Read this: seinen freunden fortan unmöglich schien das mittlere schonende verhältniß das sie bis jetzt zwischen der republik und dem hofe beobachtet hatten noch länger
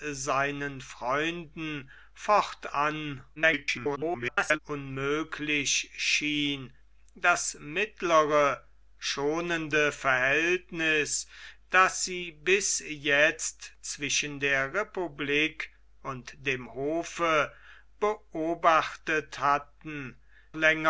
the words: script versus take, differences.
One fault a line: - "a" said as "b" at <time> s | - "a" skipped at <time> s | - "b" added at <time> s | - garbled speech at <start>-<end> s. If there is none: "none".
- garbled speech at 3.4-4.6 s
- "noch" skipped at 20.2 s